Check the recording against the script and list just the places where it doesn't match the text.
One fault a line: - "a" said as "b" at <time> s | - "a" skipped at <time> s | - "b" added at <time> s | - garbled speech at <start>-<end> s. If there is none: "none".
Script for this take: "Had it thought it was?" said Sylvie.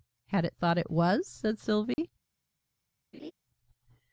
none